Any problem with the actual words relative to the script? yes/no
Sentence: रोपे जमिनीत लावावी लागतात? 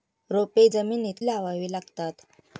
no